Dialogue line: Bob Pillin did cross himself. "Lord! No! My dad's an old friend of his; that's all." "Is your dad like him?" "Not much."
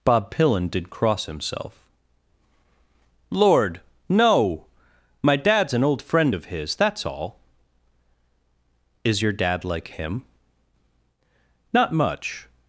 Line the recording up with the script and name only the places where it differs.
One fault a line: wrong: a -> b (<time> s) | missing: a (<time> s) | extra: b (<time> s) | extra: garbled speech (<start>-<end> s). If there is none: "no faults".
no faults